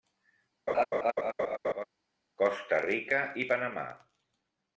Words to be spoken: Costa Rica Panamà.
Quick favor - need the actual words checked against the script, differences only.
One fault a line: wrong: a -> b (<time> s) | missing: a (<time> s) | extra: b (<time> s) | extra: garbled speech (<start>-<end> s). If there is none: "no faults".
extra: i (3.3 s)